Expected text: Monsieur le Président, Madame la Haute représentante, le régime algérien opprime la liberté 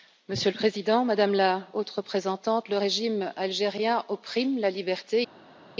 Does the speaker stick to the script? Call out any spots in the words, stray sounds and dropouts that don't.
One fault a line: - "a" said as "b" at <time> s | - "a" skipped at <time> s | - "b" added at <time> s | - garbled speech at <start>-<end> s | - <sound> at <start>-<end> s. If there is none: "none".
none